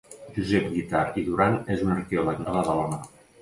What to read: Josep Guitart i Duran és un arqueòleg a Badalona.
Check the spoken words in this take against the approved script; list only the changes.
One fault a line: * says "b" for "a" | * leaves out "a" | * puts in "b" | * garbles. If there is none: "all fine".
all fine